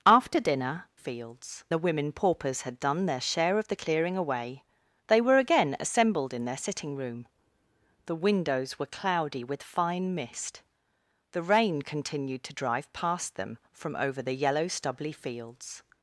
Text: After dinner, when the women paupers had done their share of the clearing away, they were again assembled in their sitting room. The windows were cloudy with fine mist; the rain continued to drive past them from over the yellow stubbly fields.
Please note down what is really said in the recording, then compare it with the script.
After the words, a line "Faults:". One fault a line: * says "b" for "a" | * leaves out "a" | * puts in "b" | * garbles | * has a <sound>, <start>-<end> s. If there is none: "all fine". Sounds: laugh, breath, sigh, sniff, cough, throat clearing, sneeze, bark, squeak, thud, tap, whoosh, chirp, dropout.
After dinner, fields the women paupers had done their share of the clearing away, they were again assembled in their sitting room. The windows were cloudy with fine mist; the rain continued to drive past them from over the yellow stubbly fields.
Faults:
* says "fields" for "when"